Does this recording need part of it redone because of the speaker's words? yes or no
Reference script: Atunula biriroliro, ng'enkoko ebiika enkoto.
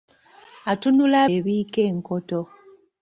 yes